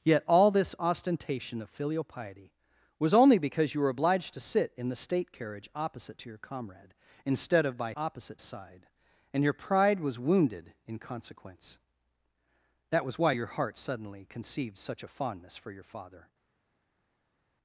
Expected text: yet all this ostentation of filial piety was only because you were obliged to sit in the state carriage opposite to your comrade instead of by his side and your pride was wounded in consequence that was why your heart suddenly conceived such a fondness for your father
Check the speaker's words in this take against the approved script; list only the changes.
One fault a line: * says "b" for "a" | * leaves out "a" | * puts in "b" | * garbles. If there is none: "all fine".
* says "opposite" for "his"